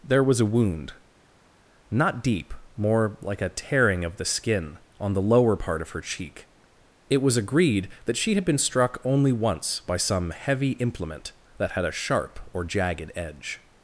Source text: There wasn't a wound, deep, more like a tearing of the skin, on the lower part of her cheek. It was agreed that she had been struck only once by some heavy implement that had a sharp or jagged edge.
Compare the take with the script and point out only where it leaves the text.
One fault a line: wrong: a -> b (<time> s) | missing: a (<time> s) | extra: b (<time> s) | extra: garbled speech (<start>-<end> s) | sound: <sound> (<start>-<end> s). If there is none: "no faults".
wrong: wasn't -> was (0.2 s)
extra: not (1.9 s)